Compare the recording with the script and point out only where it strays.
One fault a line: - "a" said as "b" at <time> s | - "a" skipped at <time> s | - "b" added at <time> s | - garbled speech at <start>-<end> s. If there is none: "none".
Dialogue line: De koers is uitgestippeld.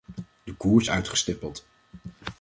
- "is" skipped at 0.9 s